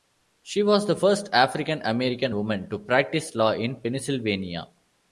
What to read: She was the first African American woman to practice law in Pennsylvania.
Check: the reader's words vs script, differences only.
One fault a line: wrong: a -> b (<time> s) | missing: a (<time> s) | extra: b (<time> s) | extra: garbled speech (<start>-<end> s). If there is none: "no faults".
no faults